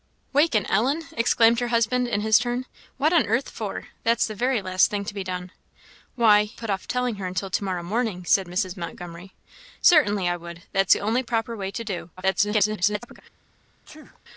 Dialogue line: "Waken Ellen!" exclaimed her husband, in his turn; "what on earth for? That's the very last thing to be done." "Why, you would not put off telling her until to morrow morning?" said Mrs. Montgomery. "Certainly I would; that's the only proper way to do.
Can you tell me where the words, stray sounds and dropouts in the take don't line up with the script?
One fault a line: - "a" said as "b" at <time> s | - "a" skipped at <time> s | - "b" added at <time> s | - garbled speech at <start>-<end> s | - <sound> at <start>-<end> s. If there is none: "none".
- "you would not" skipped at 6.5 s
- garbled speech at 12.2-13.2 s
- sneeze at 13.9-14.2 s